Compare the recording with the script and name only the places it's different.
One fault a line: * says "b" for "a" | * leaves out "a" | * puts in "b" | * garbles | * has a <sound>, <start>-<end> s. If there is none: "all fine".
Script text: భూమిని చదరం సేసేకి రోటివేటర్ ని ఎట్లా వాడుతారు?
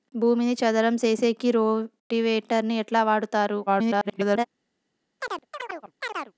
* garbles
* has a chirp, 5.2-6.3 s